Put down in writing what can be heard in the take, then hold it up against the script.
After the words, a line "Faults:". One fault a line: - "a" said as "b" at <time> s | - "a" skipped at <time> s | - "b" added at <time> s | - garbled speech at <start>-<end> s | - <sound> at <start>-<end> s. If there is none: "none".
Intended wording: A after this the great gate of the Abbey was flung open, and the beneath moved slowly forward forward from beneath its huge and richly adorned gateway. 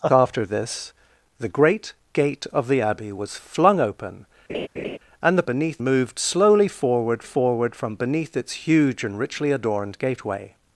A after this the great gate of the Abbey was flung open, and the beneath moved slowly forward forward from beneath its huge and richly adorned gateway.
Faults:
- laugh at 4.5-5.0 s